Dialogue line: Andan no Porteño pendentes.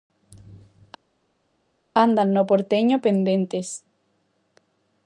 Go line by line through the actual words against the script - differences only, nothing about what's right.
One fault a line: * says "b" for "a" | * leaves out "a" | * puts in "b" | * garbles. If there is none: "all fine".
all fine